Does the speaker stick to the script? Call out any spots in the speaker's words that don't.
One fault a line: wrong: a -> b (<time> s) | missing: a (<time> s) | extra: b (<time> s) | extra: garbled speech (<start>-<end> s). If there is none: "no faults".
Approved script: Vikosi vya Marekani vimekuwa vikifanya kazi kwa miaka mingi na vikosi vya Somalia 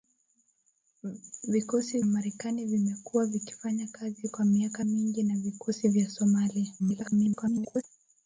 missing: vya (2.0 s)
extra: garbled speech (6.8-7.8 s)